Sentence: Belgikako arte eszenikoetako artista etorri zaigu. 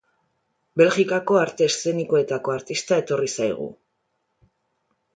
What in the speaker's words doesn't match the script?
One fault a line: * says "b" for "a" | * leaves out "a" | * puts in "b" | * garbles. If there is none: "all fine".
all fine